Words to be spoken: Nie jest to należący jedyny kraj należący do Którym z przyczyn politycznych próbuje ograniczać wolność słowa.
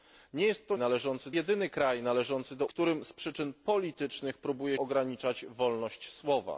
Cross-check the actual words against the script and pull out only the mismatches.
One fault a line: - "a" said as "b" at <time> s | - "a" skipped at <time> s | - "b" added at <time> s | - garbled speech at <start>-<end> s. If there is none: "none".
none